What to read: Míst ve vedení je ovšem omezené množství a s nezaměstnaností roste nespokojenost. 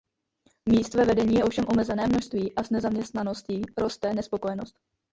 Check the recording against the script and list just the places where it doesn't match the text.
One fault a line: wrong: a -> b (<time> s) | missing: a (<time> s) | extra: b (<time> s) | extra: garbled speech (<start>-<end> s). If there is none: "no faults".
no faults